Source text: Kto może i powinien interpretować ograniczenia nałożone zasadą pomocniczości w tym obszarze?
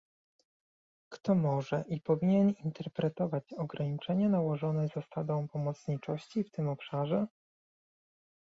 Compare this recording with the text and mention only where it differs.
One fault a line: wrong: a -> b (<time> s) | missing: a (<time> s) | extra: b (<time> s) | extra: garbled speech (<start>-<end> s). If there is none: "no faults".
no faults